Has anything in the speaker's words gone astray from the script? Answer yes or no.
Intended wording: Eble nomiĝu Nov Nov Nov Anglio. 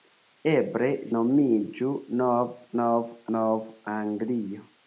no